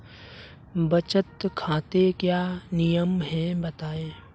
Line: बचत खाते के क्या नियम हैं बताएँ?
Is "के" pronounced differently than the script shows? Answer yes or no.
yes